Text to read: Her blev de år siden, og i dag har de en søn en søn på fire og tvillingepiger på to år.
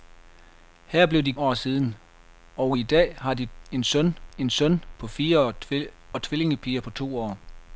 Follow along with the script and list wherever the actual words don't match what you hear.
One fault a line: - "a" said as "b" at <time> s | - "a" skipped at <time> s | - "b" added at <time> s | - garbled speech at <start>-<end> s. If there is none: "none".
none